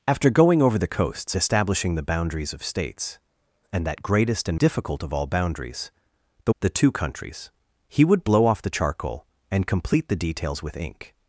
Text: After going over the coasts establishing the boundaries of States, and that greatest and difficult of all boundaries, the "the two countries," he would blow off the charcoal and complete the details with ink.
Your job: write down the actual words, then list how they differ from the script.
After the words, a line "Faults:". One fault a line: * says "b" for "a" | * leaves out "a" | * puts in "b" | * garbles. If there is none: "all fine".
After going over the coasts establishing the boundaries of States, and that greatest and difficult of all boundaries, the "the two countries," he would blow off the charcoal and complete the details with ink.
Faults:
all fine